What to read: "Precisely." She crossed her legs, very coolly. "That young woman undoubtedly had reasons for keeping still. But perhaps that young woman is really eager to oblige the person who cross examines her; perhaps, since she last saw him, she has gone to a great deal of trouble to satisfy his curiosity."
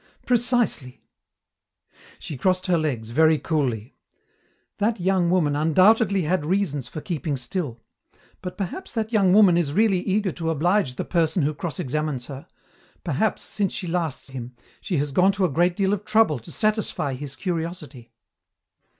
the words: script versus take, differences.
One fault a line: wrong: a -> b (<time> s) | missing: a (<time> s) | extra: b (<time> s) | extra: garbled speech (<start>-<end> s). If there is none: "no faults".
missing: saw (14.2 s)